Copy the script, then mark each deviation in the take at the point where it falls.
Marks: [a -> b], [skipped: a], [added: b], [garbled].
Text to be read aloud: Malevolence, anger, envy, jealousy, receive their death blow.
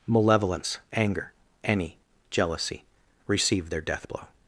Malevolence, anger, [envy, -> any] jealousy, receive their death blow.